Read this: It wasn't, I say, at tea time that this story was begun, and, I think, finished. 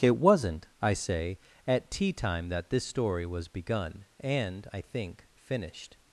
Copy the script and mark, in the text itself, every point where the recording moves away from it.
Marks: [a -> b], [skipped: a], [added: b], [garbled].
It wasn't, I say, at tea time that this story was begun, and, I think, finished.